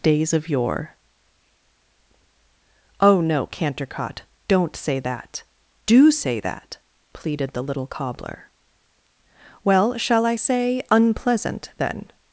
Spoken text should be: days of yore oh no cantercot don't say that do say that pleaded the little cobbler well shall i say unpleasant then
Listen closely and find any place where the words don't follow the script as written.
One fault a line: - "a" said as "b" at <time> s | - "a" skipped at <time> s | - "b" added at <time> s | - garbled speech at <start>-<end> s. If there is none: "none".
none